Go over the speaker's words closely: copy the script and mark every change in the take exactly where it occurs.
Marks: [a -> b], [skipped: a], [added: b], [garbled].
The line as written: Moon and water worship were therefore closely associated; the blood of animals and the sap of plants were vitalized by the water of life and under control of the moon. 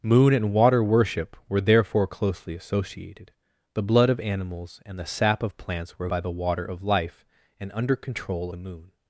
Moon and water worship were therefore closely associated; the blood of animals and the sap of plants were [skipped: vitalized] by the water of life and under control [skipped: of] the moon.